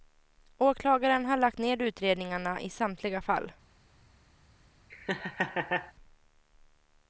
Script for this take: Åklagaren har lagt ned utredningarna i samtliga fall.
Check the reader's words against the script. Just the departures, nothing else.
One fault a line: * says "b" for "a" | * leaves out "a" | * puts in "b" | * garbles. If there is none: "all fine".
all fine